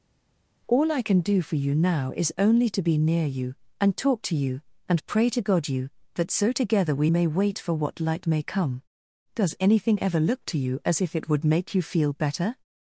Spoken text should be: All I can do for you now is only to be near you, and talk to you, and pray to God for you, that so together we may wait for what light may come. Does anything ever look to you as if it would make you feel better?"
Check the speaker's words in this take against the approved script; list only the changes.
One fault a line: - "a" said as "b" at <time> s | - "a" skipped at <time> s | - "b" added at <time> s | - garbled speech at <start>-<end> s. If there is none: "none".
- "for" skipped at 5.7 s